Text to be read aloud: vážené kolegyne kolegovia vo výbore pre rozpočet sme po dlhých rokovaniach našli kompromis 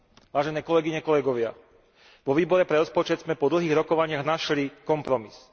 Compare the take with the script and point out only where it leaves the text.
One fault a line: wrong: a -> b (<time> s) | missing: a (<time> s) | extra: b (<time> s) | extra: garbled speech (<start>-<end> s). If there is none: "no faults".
no faults